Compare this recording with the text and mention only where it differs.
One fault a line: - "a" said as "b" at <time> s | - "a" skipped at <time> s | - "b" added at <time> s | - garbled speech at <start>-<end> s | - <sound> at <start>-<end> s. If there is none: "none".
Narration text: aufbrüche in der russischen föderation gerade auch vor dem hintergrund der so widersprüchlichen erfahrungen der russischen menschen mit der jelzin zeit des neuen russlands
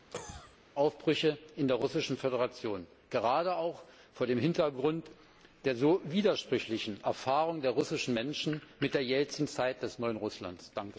- cough at 0.1-0.6 s